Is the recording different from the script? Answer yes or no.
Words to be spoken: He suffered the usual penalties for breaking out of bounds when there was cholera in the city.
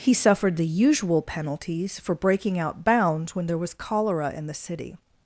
yes